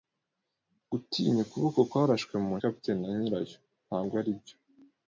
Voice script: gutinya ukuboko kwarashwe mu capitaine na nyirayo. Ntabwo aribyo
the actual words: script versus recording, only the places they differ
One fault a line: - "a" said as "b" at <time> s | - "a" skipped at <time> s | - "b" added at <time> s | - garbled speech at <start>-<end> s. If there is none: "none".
none